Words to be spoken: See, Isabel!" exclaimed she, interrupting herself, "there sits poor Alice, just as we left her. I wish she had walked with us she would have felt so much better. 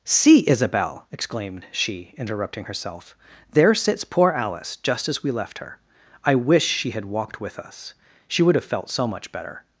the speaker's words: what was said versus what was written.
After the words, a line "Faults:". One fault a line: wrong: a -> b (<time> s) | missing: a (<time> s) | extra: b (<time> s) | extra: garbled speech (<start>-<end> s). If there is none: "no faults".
See, Isabel!" exclaimed she, interrupting herself, "there sits poor Alice, just as we left her. I wish she had walked with us she would have felt so much better.
Faults:
no faults